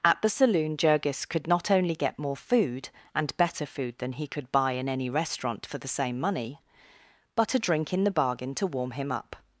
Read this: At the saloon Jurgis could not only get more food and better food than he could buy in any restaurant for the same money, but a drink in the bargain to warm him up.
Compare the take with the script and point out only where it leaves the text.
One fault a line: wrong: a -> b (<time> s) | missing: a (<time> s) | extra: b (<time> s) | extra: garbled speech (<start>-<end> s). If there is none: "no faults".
no faults